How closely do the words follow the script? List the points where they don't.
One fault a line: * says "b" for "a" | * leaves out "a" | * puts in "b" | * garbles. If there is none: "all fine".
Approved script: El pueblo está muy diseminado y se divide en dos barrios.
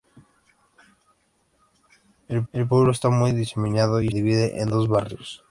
* puts in "el"
* leaves out "se"